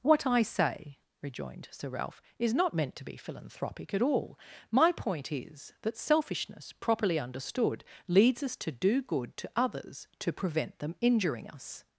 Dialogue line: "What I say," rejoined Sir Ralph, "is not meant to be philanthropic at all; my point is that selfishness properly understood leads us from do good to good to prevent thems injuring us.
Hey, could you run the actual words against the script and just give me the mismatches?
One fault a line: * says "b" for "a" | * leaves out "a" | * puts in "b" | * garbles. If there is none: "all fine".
* says "to" for "from"
* says "others" for "good"
* says "them" for "thems"